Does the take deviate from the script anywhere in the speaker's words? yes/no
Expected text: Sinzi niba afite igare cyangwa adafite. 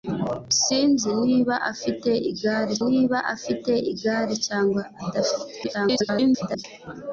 yes